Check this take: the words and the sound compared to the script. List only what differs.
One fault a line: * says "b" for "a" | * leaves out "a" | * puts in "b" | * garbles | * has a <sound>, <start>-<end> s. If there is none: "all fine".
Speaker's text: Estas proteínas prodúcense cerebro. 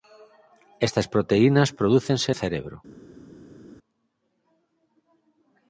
all fine